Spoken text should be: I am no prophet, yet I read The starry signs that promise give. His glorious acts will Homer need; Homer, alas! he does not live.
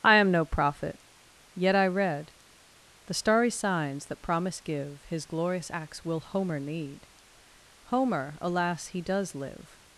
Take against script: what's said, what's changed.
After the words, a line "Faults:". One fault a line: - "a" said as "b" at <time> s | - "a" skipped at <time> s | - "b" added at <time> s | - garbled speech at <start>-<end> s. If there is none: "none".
I am no prophet, yet I read The starry signs that promise give. His glorious acts will Homer need; Homer, alas! he does live.
Faults:
- "not" skipped at 9.3 s